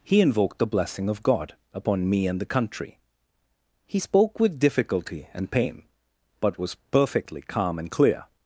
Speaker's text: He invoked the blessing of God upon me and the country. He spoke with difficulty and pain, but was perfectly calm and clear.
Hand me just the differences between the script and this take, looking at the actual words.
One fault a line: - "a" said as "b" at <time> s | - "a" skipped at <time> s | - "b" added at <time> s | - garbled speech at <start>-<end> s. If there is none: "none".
none